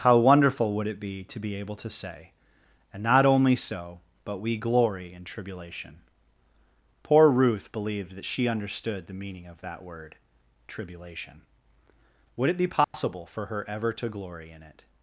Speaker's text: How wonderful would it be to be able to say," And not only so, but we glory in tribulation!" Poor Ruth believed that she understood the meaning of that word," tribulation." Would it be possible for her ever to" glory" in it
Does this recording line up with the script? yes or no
yes